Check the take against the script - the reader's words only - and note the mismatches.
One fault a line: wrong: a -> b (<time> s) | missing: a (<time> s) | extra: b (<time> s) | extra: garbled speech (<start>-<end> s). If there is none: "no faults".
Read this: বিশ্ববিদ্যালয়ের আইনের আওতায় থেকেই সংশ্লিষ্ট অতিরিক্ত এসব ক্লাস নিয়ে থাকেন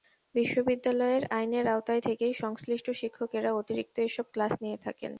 extra: শিক্ষকেরা (3.0 s)